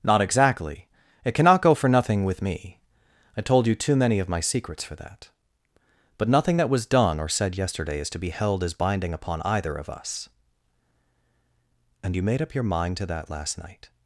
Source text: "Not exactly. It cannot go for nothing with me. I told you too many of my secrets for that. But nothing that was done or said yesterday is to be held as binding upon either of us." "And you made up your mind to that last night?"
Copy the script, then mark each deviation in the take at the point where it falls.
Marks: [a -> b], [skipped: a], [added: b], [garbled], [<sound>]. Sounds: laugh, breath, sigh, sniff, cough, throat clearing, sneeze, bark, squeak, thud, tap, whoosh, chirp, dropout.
"Not exactly. It cannot go for nothing with me. I told you too many of my secrets for that. But nothing that was done or said yesterday is to be held as binding upon either of us." "And you made up your mind to that last night?"